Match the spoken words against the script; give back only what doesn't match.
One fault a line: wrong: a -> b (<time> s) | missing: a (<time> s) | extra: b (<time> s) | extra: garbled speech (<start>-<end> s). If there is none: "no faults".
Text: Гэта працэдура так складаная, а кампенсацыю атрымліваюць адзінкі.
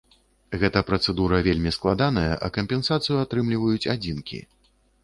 wrong: так -> вельмі (1.5 s)